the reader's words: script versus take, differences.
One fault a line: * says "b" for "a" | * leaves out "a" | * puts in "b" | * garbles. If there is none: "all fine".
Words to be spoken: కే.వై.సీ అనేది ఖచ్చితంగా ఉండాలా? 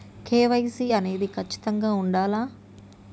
all fine